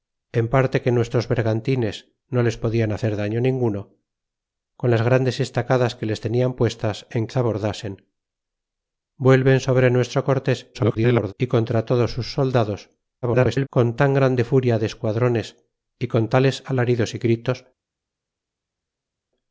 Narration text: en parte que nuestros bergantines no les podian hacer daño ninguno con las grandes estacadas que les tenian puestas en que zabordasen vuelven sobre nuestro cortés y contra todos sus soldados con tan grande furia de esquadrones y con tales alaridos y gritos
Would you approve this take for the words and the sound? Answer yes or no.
no